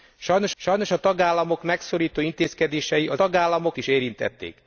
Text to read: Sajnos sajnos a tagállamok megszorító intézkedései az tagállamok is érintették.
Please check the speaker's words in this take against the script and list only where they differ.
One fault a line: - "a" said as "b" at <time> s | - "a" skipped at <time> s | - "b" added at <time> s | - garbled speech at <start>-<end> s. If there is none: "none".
none